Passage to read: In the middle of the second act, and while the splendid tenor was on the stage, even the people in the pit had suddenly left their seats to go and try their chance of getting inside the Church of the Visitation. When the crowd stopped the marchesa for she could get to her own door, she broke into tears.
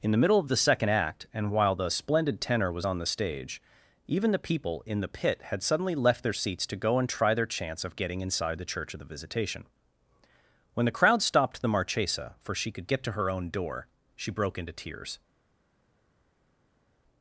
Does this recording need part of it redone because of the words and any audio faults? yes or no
no